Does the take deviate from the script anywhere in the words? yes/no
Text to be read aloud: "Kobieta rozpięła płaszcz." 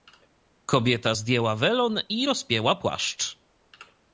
yes